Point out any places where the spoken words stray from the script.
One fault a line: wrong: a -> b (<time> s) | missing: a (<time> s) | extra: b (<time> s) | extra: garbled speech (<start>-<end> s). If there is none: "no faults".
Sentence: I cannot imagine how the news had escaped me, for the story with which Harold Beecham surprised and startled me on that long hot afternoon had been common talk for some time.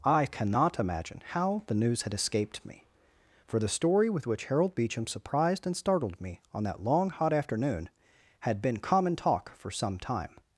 no faults